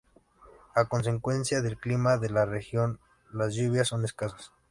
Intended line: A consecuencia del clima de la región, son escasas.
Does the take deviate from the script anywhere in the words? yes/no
yes